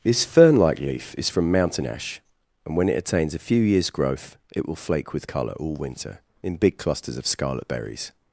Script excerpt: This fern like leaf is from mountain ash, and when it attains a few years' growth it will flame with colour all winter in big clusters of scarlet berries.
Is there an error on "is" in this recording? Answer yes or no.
no